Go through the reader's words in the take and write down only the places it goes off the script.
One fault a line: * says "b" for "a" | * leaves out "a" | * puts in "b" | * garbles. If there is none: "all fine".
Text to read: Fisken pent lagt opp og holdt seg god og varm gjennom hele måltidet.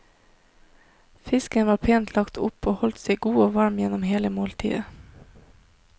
* puts in "var"